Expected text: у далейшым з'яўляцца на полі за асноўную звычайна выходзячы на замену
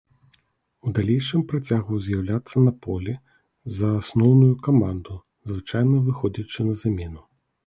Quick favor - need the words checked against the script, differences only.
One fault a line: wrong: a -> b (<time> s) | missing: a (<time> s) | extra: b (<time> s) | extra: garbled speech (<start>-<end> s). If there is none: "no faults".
extra: працягваў (1.5 s)
extra: каманду (4.7 s)